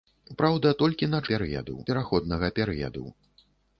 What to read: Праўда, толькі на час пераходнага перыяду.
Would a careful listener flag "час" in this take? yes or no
yes